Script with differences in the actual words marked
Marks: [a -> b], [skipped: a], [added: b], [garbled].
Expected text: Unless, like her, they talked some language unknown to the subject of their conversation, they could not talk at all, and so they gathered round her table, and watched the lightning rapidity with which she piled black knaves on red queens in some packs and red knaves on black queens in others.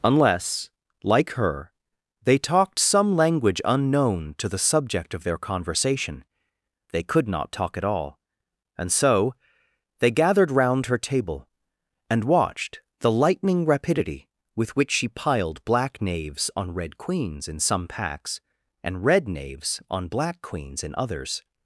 Unless, like her, they talked some language unknown to the subject of their conversation, they could not talk at all, and so they gathered round her table, and watched the lightning rapidity with which she piled black knaves on red queens in some packs and red knaves on black queens in others.